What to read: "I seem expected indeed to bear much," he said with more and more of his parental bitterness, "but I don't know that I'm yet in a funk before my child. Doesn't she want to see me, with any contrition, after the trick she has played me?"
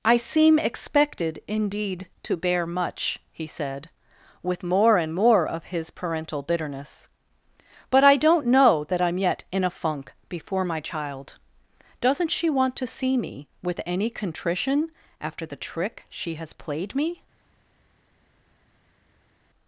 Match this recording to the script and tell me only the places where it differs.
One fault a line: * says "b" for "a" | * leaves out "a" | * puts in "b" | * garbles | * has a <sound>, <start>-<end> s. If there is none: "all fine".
all fine